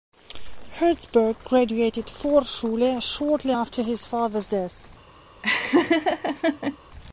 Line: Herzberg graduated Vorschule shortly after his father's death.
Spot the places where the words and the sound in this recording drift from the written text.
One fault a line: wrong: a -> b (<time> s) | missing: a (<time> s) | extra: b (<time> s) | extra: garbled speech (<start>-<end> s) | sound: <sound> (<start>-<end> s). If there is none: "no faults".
sound: laugh (5.4-6.8 s)